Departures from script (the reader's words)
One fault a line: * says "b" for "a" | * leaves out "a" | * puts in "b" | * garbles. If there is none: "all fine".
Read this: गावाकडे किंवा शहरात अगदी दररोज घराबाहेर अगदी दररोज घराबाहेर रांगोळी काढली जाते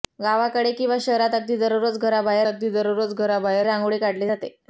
all fine